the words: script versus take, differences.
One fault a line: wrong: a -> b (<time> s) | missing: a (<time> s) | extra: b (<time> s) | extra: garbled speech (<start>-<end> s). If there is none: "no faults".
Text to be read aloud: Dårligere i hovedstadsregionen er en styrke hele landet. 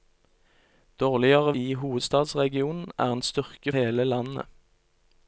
no faults